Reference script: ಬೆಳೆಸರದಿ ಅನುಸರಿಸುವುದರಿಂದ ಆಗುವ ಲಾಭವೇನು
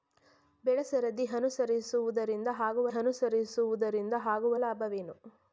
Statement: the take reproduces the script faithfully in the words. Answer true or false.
false